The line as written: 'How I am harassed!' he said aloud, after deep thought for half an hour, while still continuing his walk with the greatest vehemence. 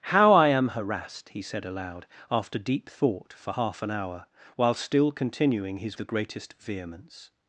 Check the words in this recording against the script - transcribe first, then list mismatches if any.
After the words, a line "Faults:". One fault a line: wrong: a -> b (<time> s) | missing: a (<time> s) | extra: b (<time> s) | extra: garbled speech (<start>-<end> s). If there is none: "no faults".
'How I am harassed!' he said aloud, after deep thought for half an hour, while still continuing his the greatest vehemence.
Faults:
missing: walk with (6.0 s)